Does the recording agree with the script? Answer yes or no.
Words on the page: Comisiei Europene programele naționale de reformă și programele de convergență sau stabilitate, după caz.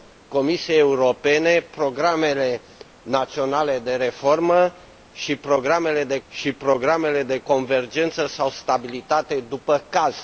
no